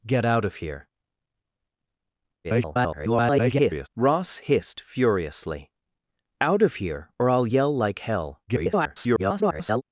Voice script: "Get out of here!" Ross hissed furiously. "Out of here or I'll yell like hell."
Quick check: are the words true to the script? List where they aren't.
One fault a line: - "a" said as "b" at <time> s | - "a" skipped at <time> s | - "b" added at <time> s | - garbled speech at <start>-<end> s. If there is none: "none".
- garbled speech at 2.4-3.9 s
- garbled speech at 8.5-9.8 s